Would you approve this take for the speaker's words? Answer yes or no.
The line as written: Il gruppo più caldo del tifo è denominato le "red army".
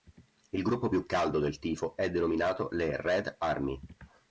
yes